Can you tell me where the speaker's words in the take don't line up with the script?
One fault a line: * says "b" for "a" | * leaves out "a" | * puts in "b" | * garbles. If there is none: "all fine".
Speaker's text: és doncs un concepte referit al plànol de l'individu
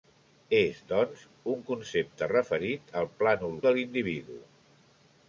all fine